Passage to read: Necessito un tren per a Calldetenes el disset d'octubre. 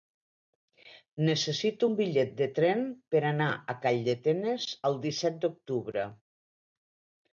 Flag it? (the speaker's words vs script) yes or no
yes